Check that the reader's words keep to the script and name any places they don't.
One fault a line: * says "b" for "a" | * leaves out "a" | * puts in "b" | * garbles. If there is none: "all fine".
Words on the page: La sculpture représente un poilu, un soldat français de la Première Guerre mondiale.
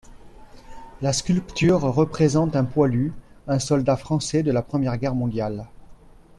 all fine